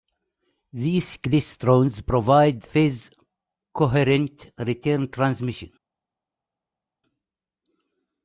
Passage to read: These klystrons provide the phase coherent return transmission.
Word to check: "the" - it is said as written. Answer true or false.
false